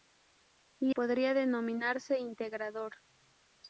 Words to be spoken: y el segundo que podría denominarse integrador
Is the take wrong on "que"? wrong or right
wrong